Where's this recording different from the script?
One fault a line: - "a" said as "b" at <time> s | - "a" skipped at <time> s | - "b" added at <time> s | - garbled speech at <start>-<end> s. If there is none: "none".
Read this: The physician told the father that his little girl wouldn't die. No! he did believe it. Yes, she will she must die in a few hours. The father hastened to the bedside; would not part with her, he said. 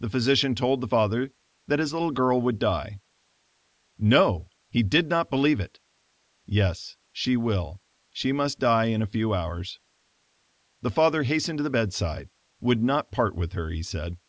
- "wouldn't" said as "would" at 2.4 s
- "not" added at 5.1 s